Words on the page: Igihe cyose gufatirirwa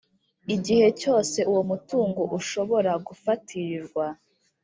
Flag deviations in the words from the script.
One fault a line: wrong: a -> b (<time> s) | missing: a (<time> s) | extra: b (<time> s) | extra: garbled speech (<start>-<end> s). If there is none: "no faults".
extra: uwo mutungo ushobora (1.5 s)